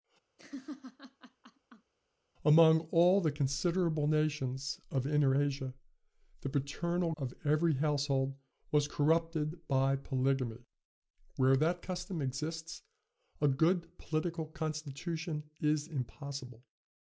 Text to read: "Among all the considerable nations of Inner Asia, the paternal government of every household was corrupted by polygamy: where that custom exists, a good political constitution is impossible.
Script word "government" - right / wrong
wrong